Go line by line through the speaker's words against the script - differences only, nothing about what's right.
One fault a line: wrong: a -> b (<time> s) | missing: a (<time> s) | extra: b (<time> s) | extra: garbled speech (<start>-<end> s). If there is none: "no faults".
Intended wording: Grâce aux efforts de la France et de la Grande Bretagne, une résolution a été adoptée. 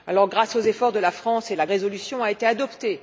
missing: Grande Bretagne une (1.7 s)